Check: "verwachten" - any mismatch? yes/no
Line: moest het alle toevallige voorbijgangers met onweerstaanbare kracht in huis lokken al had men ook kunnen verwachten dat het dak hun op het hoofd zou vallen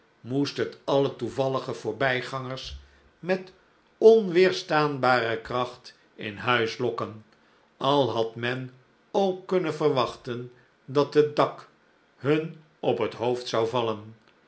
no